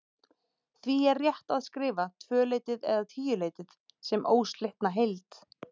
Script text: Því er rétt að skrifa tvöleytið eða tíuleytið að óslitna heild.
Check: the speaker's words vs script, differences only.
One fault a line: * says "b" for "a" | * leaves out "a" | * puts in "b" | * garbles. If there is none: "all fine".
* says "sem" for "að"